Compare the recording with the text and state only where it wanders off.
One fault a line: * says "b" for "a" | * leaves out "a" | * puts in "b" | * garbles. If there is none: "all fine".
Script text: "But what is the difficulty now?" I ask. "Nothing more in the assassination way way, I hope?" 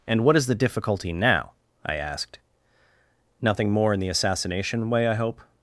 * says "And" for "But"
* says "asked" for "ask"
* leaves out "way"